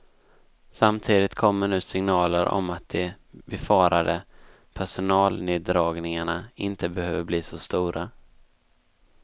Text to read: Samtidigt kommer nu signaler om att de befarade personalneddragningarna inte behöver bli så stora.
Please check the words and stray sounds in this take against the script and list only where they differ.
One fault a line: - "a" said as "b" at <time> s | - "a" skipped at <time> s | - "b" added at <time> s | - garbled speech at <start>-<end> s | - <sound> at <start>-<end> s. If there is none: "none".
none